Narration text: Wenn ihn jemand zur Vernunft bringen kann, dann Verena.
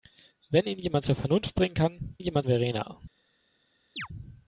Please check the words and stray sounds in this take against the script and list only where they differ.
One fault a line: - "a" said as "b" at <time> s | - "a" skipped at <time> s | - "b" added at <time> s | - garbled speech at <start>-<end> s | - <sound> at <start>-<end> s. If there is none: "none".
- "dann" said as "jemand" at 2.2 s
- chirp at 4.0-4.1 s